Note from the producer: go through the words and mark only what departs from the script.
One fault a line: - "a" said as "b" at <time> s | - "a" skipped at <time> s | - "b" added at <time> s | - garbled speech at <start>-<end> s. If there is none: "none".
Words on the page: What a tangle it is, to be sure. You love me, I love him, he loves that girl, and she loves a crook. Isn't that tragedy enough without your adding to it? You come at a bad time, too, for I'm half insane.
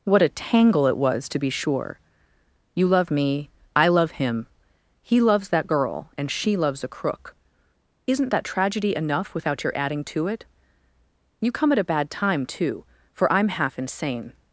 - "is" said as "was" at 1.0 s